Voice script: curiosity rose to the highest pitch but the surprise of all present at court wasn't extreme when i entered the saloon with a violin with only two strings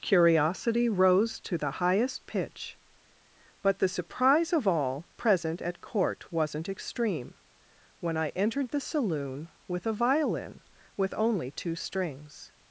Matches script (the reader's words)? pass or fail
pass